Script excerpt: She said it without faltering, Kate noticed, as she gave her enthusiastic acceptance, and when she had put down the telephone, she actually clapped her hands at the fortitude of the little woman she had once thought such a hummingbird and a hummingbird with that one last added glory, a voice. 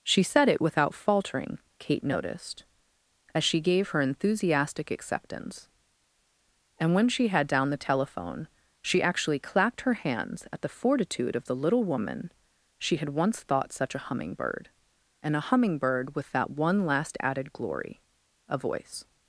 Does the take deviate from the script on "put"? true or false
true